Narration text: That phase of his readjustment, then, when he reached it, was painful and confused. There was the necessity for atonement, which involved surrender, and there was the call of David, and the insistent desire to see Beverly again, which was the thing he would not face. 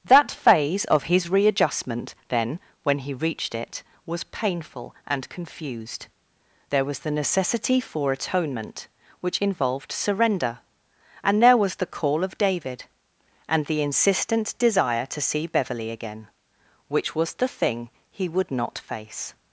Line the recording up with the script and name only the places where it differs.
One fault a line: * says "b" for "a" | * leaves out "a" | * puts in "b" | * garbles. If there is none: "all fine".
all fine